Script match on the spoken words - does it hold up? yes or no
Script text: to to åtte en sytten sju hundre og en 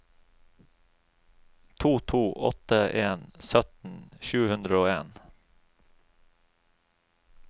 yes